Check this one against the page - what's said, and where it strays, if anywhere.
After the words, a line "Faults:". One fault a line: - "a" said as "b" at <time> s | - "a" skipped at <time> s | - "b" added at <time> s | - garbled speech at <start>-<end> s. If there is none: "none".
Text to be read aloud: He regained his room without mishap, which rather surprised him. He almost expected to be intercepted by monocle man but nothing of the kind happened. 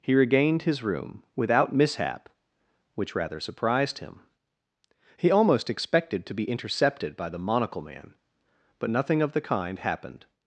He regained his room without mishap, which rather surprised him. He almost expected to be intercepted by the monocle man but nothing of the kind happened.
Faults:
- "the" added at 7.3 s